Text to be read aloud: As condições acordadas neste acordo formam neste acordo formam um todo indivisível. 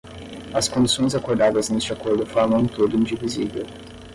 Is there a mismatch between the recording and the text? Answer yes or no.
yes